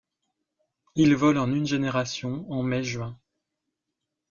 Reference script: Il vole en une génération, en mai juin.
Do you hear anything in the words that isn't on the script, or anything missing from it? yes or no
no